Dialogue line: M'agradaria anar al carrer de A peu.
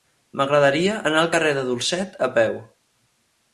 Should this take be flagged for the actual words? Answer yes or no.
yes